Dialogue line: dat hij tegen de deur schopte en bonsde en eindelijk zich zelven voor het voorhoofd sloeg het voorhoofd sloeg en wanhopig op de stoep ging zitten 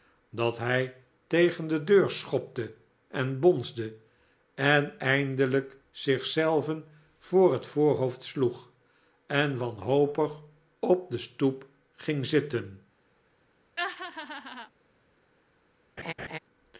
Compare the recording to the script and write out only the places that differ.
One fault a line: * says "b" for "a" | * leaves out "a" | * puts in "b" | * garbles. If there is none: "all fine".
* leaves out "het voorhoofd sloeg"